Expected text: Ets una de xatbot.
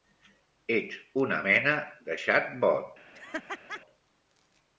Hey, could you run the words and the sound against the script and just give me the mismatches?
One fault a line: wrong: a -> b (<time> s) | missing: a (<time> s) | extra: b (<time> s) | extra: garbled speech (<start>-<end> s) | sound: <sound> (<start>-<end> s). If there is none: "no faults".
extra: mena (1.5 s)
sound: laugh (3.1-3.8 s)